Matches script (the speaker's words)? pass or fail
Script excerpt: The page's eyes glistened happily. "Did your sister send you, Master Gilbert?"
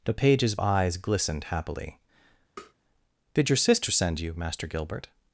pass